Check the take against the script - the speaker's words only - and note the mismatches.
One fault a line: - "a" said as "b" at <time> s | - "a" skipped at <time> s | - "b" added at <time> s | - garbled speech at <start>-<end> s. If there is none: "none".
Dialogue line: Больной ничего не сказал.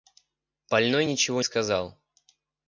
- "не" skipped at 1.4 s